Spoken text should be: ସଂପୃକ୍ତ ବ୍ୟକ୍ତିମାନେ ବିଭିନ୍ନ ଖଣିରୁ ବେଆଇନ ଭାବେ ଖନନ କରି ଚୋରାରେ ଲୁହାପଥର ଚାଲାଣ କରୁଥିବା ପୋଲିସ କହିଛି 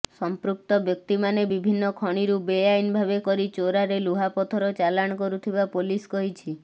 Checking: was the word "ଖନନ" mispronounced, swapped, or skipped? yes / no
yes